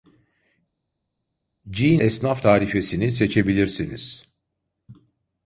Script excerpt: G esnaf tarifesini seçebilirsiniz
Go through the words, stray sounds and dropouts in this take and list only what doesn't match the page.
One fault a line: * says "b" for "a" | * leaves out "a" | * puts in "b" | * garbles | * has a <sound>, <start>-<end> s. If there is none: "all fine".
all fine